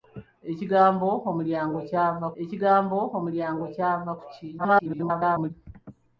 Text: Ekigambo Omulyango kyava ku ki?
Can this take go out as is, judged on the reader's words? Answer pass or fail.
fail